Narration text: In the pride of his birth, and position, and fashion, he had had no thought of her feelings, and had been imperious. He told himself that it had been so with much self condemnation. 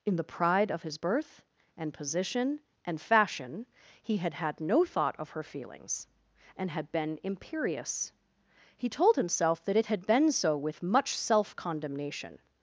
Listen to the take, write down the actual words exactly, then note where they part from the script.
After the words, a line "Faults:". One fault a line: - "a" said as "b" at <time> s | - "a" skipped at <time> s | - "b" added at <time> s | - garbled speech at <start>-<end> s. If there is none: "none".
In the pride of his birth, and position, and fashion, he had had no thought of her feelings, and had been imperious. He told himself that it had been so with much self condemnation.
Faults:
none